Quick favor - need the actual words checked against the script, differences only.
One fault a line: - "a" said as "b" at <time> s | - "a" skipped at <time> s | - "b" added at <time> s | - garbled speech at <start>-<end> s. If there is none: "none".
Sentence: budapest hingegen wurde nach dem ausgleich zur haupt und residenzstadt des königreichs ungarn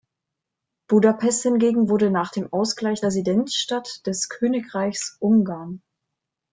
- "zur haupt und" skipped at 3.0 s